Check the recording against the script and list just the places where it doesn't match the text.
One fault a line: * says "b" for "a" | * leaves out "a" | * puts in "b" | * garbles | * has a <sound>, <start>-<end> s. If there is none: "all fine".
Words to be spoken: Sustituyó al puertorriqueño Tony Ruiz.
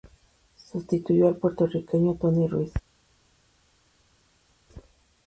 all fine